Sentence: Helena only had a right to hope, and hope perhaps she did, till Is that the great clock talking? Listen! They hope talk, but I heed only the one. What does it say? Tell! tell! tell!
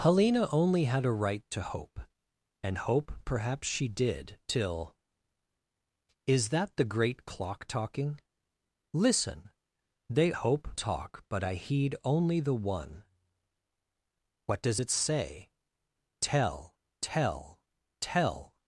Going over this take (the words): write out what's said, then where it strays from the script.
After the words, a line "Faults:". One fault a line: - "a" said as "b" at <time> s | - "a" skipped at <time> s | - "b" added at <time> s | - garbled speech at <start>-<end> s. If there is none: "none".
Helena only had a right to hope, and hope perhaps she did, till Is that the great clock talking? Listen! They hope talk, but I heed only the one. What does it say? Tell! tell! tell!
Faults:
none